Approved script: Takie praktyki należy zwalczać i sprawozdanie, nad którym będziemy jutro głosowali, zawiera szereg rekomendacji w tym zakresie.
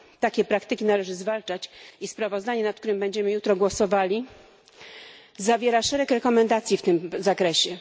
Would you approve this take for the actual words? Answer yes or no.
yes